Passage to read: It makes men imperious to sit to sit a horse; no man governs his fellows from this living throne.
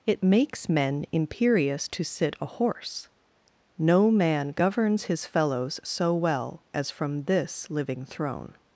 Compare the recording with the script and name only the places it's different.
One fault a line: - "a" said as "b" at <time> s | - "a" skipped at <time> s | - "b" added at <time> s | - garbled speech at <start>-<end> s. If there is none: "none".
- "to sit" skipped at 2.4 s
- "so well as" added at 5.8 s